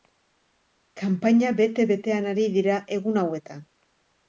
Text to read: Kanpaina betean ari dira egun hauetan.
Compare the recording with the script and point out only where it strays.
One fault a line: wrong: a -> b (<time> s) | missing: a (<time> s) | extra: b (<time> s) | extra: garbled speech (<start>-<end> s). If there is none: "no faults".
extra: bete (1.6 s)